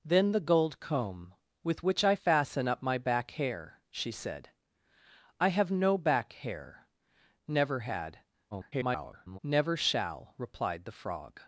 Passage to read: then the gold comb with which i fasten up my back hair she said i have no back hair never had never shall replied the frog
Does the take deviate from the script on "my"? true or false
false